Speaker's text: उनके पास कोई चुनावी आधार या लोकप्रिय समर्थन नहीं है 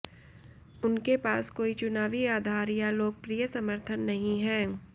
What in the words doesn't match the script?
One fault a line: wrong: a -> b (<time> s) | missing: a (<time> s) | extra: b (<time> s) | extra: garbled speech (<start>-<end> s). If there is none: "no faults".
no faults